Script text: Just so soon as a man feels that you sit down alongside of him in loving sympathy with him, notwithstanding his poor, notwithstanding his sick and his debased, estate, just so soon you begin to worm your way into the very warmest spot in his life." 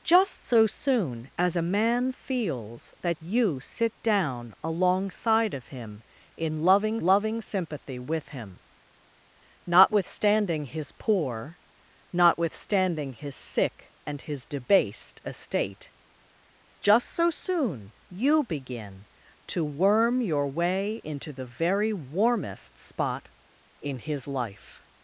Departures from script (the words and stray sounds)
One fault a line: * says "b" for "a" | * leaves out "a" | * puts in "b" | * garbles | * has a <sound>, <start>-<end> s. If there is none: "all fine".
* puts in "loving"